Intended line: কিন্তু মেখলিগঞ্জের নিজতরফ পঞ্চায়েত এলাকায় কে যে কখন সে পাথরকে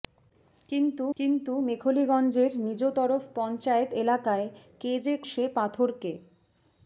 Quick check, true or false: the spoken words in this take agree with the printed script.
false